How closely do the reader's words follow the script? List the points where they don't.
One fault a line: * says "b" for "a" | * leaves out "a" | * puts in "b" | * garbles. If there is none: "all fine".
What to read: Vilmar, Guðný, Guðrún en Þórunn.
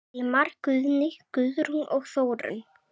* says "og" for "en"